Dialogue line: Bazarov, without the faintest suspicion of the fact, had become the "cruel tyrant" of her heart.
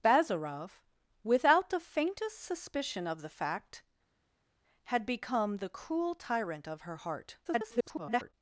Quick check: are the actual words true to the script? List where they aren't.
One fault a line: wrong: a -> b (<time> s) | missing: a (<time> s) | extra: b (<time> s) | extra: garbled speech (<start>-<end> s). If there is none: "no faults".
extra: garbled speech (7.4-8.3 s)